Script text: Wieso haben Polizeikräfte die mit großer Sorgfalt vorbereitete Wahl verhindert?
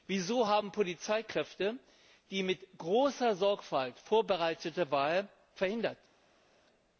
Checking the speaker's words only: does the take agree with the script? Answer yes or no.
yes